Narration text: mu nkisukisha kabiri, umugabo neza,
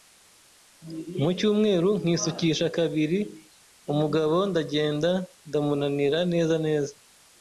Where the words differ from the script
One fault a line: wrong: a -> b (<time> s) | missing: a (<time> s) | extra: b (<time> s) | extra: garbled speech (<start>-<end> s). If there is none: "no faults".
extra: cyumweru (1.4 s)
extra: ndagenda ndamunanira neza (4.5 s)